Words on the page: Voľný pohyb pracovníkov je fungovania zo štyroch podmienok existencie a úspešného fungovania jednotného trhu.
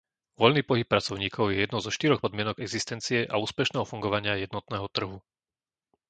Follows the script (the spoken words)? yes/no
no